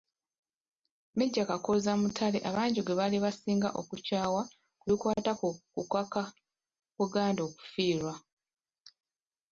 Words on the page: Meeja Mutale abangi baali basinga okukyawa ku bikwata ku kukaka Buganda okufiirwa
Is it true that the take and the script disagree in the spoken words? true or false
true